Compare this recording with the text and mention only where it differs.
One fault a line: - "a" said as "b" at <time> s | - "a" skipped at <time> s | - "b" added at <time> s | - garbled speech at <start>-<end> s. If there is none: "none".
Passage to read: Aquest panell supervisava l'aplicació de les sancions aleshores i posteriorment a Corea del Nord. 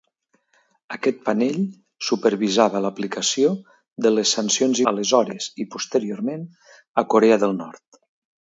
none